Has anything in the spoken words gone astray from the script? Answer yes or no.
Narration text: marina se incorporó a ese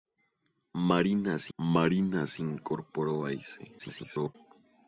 yes